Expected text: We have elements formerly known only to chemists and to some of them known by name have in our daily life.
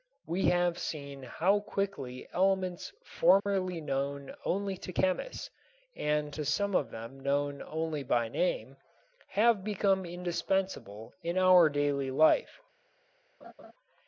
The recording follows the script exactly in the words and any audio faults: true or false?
false